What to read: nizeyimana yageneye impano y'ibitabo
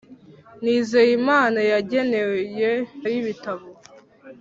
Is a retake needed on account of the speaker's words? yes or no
yes